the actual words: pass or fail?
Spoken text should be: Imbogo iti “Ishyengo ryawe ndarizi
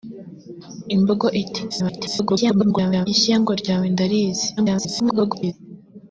fail